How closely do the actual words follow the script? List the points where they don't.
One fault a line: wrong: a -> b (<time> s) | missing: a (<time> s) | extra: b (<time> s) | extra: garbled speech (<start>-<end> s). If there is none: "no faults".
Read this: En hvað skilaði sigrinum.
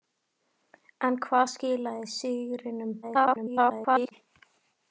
extra: garbled speech (3.0-4.1 s)